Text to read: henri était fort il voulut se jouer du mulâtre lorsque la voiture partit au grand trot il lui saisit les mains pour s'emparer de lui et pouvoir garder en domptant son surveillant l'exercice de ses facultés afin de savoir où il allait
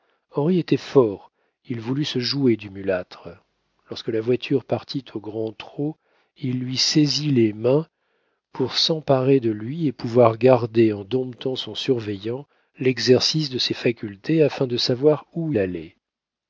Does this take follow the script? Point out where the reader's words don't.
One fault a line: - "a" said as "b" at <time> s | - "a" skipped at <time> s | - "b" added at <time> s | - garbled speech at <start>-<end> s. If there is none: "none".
- "il" skipped at 15.5 s